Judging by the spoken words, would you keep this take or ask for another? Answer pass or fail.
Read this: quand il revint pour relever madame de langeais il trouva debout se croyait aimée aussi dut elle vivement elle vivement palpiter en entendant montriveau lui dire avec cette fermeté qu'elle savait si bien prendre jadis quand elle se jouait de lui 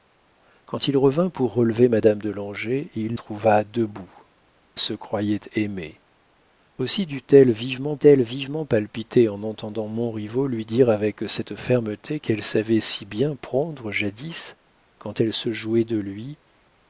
pass